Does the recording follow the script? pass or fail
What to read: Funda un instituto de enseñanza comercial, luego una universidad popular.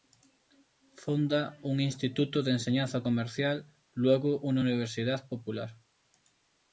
pass